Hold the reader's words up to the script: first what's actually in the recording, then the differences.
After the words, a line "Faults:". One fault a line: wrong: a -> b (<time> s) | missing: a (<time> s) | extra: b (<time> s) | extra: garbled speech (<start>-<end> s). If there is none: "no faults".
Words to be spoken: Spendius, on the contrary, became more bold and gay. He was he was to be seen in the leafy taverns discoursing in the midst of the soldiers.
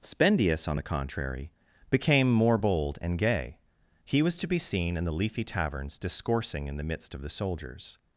Spendius, on the contrary, became more bold and gay. He was to be seen in the leafy taverns discoursing in the midst of the soldiers.
Faults:
missing: he was (4.4 s)